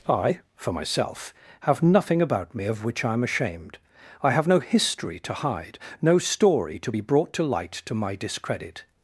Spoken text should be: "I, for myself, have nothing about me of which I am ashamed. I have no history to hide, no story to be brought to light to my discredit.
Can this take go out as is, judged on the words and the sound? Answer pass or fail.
pass